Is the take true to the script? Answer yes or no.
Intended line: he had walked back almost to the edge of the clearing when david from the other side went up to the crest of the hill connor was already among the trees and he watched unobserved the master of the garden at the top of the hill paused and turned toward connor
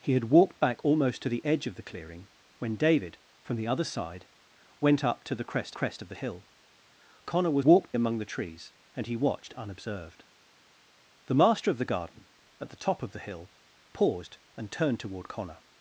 no